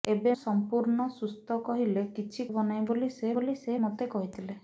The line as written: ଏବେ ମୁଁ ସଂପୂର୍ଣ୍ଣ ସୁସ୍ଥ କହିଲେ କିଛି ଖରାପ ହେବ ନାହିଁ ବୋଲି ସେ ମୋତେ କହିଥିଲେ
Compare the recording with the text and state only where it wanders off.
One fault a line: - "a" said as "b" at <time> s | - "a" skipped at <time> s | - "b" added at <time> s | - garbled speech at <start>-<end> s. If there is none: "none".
- "ମୁଁ" skipped at 0.3 s
- "ଖରାପ" skipped at 2.5 s
- "ବୋଲି ସେ" added at 3.4 s